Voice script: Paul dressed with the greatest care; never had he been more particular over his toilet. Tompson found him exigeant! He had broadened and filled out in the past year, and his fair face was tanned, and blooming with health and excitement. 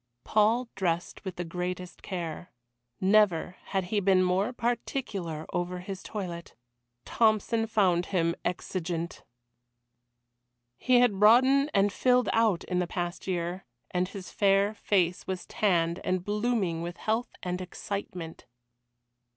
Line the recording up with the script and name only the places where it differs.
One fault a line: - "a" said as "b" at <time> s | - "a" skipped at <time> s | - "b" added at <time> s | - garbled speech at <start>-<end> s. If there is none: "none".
none